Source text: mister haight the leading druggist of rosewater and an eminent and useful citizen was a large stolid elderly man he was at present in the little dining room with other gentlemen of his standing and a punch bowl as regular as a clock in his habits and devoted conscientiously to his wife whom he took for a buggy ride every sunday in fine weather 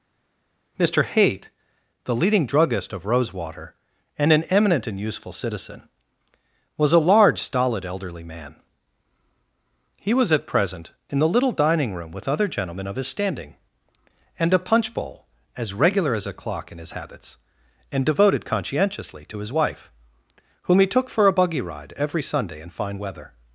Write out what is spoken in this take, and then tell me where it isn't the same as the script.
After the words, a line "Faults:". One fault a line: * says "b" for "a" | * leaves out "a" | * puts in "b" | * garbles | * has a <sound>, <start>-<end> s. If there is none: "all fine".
mister haight the leading druggist of rosewater and an eminent and useful citizen was a large stolid elderly man he was at present in the little dining room with other gentlemen of his standing and a punch bowl as regular as a clock in his habits and devoted conscientiously to his wife whom he took for a buggy ride every sunday in fine weather
Faults:
all fine